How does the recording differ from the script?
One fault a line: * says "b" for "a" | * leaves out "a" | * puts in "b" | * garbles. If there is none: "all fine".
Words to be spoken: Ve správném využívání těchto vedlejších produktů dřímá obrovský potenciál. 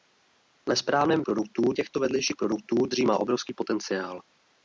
* says "produktů" for "využívání"